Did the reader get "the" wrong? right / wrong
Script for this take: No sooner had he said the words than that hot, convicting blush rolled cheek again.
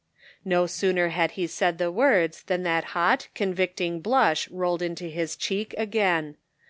right